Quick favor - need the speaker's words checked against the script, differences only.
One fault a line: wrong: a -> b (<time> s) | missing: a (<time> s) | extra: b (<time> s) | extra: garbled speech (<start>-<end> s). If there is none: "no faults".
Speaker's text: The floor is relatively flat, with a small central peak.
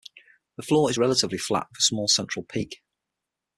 no faults